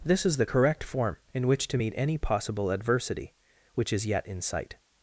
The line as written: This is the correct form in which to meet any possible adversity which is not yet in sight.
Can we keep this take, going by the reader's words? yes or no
no